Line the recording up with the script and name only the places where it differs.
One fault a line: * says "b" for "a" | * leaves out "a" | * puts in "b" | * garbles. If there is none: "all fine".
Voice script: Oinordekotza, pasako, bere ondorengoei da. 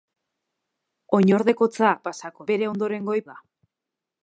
all fine